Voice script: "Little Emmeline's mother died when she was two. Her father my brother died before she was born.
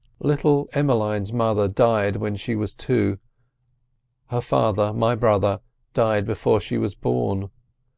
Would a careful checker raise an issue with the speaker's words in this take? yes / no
no